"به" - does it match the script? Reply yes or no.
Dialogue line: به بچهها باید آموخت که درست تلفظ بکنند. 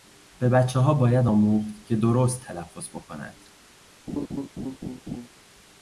yes